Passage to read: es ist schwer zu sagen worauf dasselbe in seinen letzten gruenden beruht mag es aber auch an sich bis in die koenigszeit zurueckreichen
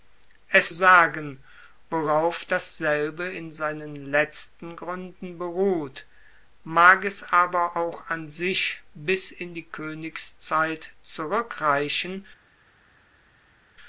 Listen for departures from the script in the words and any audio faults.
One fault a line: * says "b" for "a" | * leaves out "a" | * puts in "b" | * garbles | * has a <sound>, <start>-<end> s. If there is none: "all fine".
* leaves out "ist schwer zu"